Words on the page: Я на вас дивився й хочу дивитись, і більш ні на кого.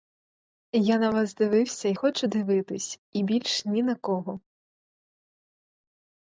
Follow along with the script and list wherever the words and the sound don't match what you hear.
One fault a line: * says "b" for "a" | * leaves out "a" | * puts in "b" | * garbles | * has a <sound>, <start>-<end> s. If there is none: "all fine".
all fine